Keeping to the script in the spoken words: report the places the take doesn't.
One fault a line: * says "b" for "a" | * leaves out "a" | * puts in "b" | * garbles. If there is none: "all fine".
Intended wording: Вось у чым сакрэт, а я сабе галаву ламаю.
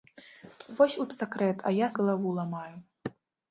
* leaves out "чым"
* leaves out "сабе"